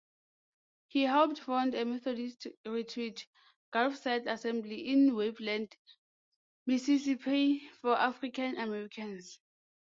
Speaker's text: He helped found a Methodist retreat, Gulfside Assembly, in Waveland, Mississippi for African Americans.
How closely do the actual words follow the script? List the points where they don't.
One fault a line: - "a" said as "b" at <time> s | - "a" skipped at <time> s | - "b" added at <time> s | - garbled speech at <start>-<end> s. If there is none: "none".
none